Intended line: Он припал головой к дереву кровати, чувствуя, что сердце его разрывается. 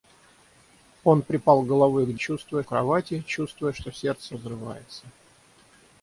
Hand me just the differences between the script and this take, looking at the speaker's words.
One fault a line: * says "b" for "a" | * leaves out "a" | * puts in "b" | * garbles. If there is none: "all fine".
* says "чувствуя" for "дереву"
* leaves out "его"